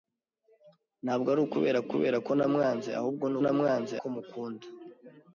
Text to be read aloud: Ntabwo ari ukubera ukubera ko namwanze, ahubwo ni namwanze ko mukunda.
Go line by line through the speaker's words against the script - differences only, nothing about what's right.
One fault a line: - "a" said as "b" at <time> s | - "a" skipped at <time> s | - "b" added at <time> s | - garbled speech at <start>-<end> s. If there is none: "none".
none